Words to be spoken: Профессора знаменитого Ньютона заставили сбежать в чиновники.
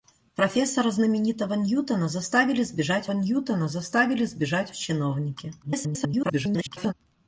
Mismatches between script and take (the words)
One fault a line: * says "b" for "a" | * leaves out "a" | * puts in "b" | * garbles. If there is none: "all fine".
* puts in "Ньютона заставили сбежать"
* garbles